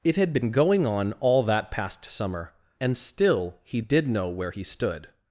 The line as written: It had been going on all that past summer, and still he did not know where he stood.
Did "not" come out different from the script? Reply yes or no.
yes